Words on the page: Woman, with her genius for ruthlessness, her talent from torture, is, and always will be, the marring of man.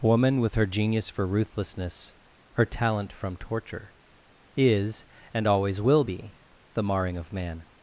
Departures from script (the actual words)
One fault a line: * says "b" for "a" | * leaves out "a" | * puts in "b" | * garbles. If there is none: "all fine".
all fine